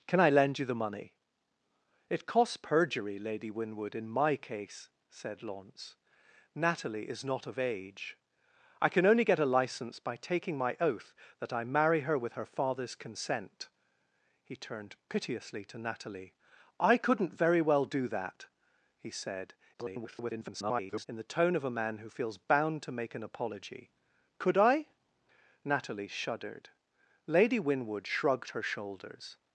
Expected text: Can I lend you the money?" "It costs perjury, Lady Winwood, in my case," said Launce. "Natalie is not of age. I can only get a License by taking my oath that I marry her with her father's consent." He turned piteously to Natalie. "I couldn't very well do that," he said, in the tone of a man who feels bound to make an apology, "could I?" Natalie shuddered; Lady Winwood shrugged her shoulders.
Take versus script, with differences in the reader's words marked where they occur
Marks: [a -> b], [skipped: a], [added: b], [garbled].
Can I lend you the money?" "It costs perjury, Lady Winwood, in my case," said Launce. "Natalie is not of age. I can only get a License by taking my oath that I marry her with her father's consent." He turned piteously to Natalie. "I couldn't very well do that," he said, [garbled] in the tone of a man who feels bound to make an apology, "could I?" Natalie shuddered; Lady Winwood shrugged her shoulders.